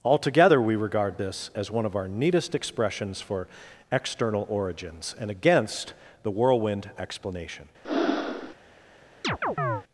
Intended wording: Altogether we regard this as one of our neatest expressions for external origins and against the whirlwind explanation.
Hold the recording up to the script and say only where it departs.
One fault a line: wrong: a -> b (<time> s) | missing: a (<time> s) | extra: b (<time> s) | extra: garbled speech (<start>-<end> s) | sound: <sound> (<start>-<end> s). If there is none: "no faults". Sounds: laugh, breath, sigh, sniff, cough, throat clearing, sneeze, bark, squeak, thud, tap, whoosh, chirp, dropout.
sound: breath (7.8-8.5 s)
sound: chirp (9.2-9.8 s)